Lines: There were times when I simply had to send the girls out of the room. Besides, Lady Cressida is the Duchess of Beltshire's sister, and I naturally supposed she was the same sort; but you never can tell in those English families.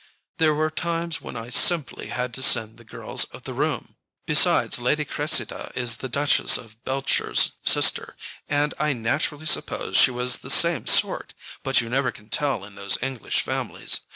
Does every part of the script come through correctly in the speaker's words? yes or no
no